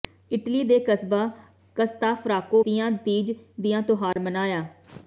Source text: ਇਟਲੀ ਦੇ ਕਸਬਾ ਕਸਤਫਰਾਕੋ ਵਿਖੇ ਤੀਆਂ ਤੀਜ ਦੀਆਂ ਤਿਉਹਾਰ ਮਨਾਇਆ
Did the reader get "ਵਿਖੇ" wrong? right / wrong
wrong